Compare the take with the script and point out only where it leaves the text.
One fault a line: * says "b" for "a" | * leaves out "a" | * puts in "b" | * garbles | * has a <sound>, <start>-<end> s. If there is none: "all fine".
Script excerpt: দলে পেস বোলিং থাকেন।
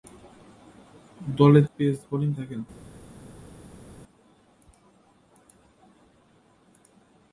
all fine